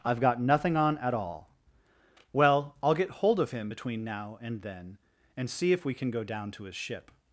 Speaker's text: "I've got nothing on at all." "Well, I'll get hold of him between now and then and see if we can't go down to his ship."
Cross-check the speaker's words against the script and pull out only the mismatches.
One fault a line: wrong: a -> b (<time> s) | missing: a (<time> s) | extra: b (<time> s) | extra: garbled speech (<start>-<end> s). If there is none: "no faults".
wrong: can't -> can (5.9 s)